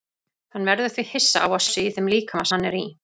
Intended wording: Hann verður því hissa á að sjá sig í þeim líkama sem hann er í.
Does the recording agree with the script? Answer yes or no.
no